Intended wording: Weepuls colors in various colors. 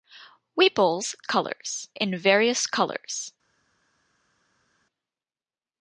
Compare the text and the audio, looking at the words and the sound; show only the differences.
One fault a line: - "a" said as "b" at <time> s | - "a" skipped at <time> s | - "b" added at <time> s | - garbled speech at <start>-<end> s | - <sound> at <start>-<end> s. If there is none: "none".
none